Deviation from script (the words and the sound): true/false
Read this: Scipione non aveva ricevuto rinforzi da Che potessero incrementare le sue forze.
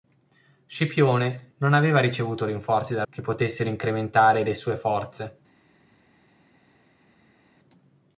false